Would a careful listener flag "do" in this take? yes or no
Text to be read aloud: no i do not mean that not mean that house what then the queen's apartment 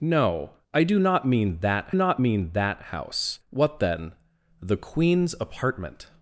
no